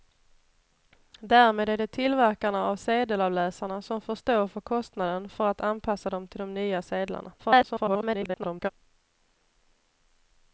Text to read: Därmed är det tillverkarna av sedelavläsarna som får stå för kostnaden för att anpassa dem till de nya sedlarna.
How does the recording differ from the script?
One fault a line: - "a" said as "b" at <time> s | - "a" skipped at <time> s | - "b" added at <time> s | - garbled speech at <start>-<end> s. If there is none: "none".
- garbled speech at 7.4-8.7 s